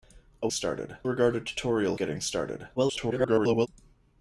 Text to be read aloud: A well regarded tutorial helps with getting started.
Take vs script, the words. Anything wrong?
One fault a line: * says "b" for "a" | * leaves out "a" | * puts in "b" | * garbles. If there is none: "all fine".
* says "started" for "well"
* leaves out "helps with"
* garbles